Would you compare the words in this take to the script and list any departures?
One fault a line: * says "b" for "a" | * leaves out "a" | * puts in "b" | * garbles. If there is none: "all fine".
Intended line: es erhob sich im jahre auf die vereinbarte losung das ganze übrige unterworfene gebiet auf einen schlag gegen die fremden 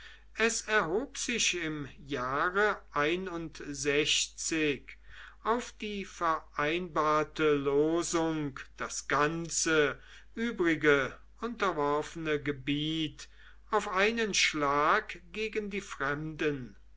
all fine